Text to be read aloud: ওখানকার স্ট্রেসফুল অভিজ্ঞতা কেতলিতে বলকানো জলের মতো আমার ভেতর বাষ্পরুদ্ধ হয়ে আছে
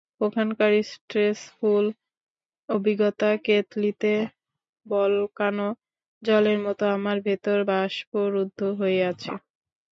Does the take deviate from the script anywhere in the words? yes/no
no